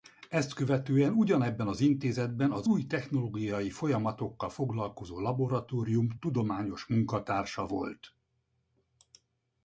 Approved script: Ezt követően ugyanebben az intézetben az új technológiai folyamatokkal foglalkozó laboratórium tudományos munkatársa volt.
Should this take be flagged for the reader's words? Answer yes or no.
no